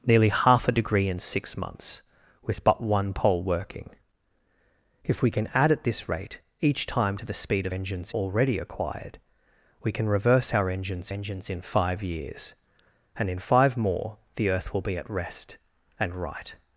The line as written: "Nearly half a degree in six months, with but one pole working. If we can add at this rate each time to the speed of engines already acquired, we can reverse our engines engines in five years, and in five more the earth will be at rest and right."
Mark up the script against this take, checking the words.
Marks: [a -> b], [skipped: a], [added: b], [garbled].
"Nearly half a degree in six months, with but one pole working. If we can add at this rate each time to the speed of engines already acquired, we can reverse our engines engines in five years, and in five more the earth will be at rest and right."